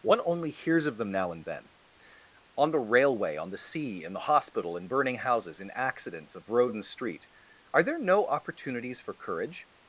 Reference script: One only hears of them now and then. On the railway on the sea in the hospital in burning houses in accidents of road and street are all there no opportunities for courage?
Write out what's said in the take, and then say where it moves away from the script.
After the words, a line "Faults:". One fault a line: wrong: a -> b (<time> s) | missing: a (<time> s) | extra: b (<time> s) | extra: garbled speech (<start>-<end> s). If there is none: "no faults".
One only hears of them now and then. On the railway on the sea in the hospital in burning houses in accidents of road and street are there no opportunities for courage?
Faults:
missing: all (7.8 s)